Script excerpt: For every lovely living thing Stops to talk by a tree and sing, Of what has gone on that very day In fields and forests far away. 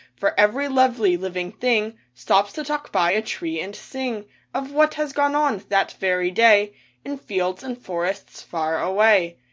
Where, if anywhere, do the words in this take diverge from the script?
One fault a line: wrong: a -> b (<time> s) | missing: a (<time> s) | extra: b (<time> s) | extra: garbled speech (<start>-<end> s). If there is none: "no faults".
no faults